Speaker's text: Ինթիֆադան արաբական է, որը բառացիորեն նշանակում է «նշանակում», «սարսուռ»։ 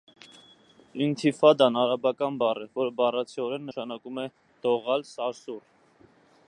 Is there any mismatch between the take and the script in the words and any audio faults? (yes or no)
yes